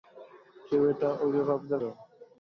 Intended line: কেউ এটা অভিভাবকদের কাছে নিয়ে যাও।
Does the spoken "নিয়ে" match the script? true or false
false